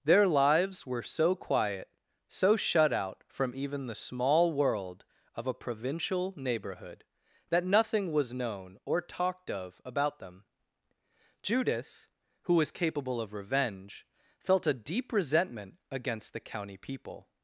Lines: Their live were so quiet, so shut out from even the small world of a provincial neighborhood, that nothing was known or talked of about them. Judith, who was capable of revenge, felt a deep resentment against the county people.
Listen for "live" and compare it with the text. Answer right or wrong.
wrong